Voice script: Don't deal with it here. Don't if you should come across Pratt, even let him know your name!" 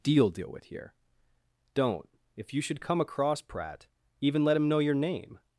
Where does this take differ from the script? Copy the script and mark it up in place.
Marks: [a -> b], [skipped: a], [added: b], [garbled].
[Don't -> Deal] deal with [skipped: it] here. Don't if you should come across Pratt, even let him know your name!"